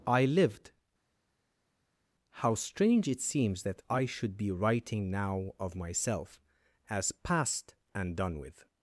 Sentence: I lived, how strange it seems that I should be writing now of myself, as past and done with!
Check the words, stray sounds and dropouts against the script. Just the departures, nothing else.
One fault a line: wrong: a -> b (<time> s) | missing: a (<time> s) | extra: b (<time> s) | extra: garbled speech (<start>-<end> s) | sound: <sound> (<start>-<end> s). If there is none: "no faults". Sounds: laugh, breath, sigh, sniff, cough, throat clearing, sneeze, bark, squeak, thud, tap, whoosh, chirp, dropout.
no faults